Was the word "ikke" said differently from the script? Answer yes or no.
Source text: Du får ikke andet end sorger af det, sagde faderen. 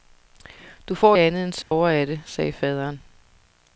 yes